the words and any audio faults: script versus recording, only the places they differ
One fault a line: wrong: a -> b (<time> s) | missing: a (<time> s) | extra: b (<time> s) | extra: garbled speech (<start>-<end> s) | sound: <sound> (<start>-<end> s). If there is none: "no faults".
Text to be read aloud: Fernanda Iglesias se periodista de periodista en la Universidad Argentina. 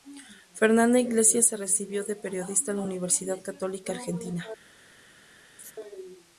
wrong: periodista -> recibió (1.6 s)
extra: Católica (3.4 s)
sound: laugh (5.6-5.7 s)